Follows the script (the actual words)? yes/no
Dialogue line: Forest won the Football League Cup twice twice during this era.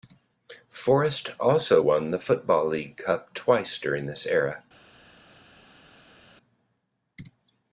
no